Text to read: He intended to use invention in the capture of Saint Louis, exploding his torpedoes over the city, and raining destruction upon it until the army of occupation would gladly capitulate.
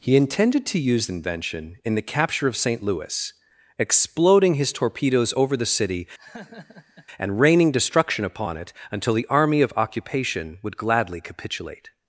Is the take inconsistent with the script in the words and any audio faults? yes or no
yes